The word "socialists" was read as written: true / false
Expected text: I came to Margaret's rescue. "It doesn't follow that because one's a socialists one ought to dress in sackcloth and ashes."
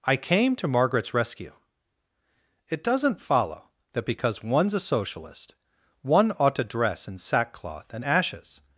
false